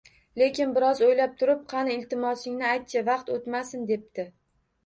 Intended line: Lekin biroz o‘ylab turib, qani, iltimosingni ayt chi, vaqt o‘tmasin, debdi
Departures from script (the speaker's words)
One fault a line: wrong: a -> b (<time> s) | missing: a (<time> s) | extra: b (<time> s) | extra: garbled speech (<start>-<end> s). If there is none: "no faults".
no faults